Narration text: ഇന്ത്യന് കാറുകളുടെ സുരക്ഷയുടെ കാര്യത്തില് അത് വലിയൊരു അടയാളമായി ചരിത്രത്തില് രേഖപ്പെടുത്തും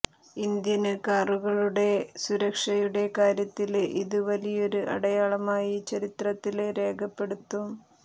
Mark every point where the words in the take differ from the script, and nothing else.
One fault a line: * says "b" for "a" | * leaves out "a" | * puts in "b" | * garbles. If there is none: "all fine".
* says "ഇത്" for "അത്"